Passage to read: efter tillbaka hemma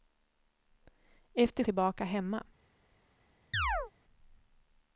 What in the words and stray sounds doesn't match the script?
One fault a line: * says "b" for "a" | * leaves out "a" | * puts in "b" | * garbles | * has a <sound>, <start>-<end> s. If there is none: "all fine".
* has a chirp, 3.5-3.9 s